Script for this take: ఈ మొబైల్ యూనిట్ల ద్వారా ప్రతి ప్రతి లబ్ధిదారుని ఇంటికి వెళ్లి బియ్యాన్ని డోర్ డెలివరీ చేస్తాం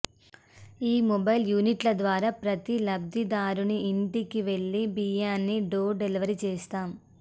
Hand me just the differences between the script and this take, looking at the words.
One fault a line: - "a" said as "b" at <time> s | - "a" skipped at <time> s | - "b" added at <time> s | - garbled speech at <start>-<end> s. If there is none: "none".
- "ప్రతి" skipped at 2.8 s